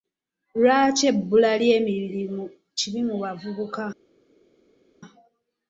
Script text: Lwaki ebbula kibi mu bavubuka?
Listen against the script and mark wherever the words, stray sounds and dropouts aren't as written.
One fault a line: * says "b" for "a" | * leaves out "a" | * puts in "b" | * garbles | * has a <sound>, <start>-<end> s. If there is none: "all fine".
* puts in "ly'emirimu"